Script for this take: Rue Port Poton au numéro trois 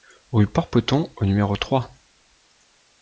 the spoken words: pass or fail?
pass